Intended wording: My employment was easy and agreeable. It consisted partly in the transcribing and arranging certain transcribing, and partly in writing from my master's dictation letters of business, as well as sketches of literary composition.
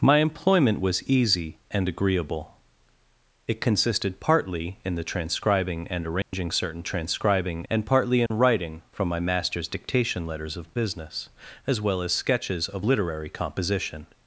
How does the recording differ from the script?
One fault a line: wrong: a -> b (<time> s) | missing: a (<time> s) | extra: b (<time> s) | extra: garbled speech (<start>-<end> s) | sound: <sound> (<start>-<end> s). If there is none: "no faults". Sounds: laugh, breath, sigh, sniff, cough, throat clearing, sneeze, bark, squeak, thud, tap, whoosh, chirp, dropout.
sound: dropout (6.2-6.3 s)
sound: dropout (8.3-8.3 s)